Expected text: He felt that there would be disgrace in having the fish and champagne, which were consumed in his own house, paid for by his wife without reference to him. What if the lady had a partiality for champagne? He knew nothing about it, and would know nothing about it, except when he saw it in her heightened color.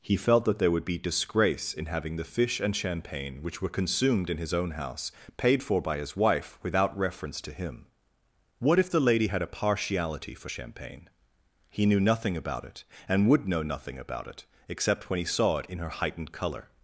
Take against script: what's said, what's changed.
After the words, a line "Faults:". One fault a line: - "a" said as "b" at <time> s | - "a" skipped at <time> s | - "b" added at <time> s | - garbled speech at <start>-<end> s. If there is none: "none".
He felt that there would be disgrace in having the fish and champagne, which were consumed in his own house, paid for by his wife without reference to him. What if the lady had a partiality for champagne? He knew nothing about it, and would know nothing about it, except when he saw it in her heightened color.
Faults:
none